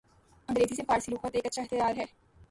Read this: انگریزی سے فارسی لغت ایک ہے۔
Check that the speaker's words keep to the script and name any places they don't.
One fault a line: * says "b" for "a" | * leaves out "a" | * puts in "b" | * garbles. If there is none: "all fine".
* puts in "اچھا اختیار"